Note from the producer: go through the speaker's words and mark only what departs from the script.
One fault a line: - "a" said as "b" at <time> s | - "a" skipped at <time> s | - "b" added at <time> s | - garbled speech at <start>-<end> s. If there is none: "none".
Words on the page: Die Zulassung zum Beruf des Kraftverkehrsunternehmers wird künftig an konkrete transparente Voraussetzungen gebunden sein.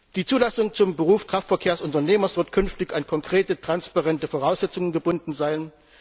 - "des" skipped at 1.2 s